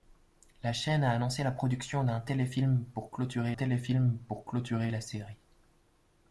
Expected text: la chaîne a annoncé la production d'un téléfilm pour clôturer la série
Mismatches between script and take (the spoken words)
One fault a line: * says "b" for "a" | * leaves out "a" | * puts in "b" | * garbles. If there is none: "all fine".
* puts in "téléfilm pour clôturer"